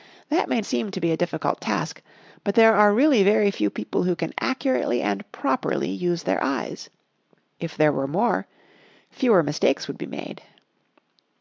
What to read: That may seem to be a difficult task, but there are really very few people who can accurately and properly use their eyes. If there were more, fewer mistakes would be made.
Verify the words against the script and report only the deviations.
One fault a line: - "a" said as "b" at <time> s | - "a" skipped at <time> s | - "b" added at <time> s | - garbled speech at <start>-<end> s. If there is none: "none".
none